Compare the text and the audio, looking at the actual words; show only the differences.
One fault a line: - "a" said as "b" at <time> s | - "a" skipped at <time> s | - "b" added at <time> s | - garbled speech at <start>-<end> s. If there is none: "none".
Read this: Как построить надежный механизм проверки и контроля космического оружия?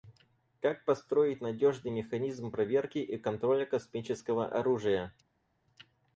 none